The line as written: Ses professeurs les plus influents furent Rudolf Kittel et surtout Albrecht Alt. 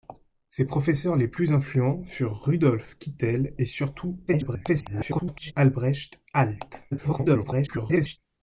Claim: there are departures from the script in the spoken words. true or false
true